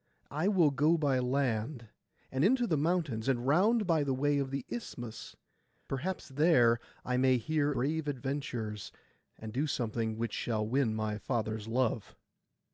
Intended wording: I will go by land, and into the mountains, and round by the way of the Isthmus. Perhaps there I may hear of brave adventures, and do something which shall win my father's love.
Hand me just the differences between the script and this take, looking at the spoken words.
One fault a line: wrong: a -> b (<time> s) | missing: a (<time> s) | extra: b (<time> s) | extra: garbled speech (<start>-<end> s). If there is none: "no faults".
missing: of (7.7 s)